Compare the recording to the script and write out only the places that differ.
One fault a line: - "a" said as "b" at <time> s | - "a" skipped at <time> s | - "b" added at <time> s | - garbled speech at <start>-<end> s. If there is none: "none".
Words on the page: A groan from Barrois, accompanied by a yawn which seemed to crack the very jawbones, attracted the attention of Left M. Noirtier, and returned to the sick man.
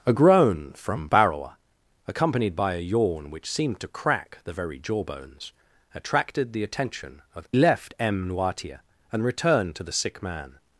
none